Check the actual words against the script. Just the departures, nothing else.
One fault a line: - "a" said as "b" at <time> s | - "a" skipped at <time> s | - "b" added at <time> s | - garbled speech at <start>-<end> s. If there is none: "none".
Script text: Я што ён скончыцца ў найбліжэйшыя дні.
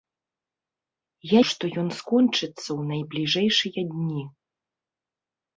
none